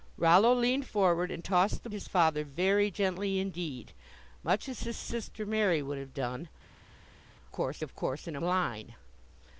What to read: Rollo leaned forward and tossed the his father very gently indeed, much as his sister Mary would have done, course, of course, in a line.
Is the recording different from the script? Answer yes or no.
no